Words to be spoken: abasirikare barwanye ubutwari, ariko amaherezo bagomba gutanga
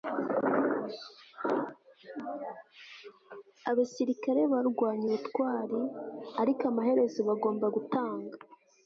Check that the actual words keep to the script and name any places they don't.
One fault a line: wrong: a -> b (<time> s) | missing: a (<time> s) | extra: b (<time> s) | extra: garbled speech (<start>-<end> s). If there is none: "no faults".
no faults